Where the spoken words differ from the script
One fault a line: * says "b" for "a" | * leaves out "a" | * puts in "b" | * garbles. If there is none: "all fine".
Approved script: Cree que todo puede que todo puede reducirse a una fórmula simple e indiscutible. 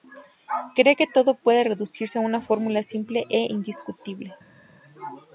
* leaves out "que todo puede"